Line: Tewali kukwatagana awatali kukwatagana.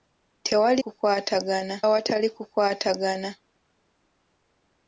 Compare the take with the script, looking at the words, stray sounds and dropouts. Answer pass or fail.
pass